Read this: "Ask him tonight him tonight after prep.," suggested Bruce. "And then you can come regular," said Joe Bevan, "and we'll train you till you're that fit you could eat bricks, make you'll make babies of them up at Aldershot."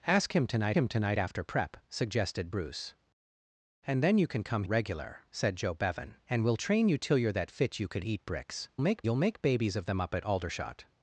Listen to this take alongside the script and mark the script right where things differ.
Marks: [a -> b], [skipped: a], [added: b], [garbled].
"Ask him tonight him tonight after prep.," suggested Bruce. "And then you can come regular," said Joe Bevan, "and we'll train you till you're that fit you could eat bricks, make you'll make babies of them up at Aldershot."